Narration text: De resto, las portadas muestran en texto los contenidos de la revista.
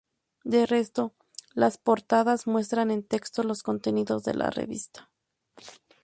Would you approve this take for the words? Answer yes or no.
yes